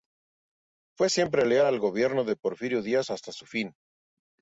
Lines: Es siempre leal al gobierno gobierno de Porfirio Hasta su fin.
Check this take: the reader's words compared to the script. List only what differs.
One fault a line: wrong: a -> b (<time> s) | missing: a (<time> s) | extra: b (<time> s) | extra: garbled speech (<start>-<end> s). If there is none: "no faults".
wrong: Es -> Fue (1.0 s)
missing: gobierno (2.2 s)
extra: Díaz (2.8 s)